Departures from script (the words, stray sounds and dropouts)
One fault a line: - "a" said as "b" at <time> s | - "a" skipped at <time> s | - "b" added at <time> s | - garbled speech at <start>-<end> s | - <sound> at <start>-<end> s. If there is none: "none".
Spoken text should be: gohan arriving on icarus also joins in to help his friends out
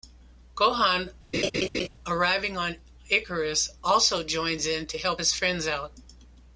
- laugh at 1.3-1.9 s